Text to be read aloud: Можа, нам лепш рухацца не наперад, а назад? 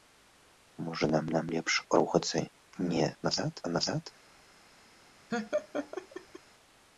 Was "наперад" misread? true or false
true